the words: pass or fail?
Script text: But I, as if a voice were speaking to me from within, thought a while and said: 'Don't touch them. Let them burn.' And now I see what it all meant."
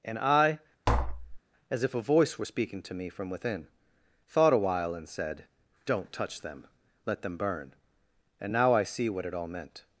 fail